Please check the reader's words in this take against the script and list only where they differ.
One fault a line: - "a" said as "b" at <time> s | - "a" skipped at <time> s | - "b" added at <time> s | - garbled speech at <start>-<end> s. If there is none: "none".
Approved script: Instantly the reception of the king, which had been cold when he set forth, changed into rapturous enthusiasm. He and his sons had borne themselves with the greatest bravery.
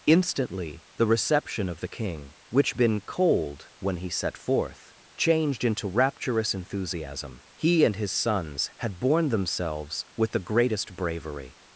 - "had" skipped at 2.8 s